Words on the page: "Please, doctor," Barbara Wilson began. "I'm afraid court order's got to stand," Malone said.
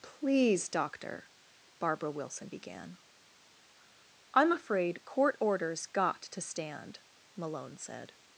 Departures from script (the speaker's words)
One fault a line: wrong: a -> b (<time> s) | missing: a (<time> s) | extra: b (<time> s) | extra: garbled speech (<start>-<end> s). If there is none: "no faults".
no faults